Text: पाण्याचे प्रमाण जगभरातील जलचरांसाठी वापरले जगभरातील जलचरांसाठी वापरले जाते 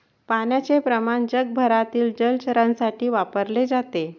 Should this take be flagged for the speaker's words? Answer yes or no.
yes